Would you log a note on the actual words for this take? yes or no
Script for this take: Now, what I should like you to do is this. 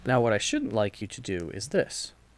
yes